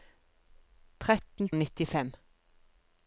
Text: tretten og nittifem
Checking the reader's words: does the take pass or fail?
pass